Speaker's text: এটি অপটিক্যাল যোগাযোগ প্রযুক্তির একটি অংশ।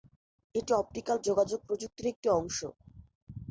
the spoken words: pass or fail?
pass